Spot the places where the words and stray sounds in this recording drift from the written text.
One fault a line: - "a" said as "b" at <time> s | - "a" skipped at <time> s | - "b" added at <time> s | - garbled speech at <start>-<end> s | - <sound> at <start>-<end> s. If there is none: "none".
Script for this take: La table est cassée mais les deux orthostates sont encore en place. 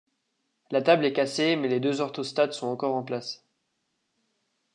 none